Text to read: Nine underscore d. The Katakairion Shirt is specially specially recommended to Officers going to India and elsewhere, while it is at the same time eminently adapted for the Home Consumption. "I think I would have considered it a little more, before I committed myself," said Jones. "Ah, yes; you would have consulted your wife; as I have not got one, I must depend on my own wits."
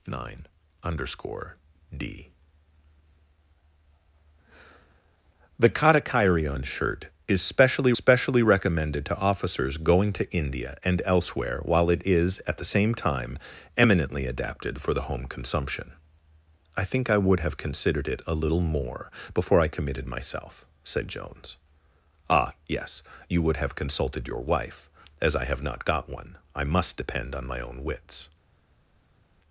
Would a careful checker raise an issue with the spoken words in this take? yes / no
no